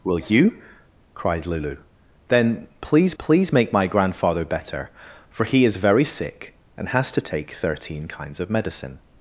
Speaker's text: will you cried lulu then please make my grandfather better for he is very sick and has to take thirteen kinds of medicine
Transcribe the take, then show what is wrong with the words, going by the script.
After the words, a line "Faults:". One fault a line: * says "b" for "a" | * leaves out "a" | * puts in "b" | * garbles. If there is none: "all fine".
will you cried lulu then please please make my grandfather better for he is very sick and has to take thirteen kinds of medicine
Faults:
* puts in "please"